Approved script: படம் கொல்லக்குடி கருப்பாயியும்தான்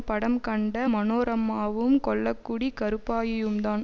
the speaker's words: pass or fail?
fail